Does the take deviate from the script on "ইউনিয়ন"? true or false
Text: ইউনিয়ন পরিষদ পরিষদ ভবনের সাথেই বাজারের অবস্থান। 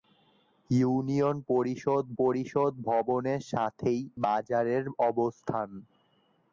false